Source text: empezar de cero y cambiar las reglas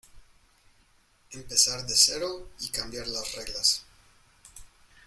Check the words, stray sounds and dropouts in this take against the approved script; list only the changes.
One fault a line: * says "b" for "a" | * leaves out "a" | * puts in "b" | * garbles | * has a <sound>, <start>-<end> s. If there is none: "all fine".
all fine